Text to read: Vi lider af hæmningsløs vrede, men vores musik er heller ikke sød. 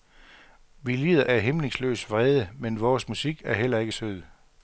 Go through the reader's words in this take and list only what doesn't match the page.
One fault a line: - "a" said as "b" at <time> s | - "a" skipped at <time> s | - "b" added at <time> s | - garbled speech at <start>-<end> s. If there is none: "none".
none